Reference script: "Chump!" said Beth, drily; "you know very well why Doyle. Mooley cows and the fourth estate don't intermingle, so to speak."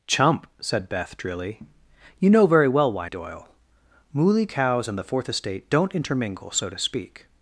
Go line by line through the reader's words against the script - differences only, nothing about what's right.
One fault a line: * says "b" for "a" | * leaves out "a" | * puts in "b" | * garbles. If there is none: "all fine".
all fine